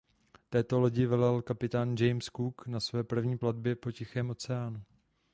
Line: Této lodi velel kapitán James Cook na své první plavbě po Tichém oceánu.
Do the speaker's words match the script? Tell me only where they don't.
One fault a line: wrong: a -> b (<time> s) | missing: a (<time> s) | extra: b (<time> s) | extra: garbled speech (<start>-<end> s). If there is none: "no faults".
no faults